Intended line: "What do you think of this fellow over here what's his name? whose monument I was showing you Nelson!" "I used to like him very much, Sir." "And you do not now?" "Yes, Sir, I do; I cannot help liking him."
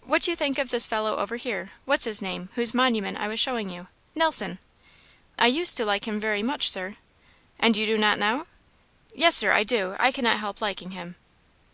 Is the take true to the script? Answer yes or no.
yes